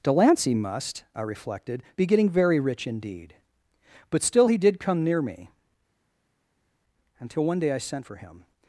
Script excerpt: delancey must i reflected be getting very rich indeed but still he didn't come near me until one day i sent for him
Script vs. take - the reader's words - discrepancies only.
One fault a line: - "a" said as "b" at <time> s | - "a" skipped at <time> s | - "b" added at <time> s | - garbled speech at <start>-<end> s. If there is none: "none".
- "didn't" said as "did" at 4.6 s